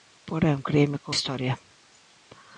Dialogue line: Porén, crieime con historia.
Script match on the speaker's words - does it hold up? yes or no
yes